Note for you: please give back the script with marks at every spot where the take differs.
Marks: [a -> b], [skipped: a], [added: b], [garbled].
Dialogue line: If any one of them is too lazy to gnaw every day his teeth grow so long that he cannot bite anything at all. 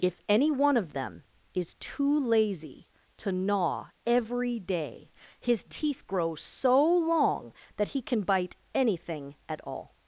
If any one of them is too lazy to gnaw every day his teeth grow so long that he [cannot -> can] bite anything at all.